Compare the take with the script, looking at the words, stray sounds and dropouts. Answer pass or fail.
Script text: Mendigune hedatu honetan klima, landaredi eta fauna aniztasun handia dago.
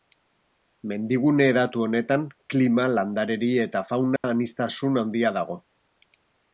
fail